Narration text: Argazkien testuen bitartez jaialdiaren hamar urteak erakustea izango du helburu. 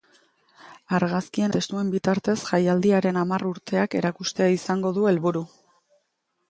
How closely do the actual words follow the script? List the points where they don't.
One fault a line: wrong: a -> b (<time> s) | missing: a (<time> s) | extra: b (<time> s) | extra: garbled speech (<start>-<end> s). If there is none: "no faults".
no faults